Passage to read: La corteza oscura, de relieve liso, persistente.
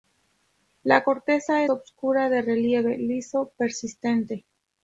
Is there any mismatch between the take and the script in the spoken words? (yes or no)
no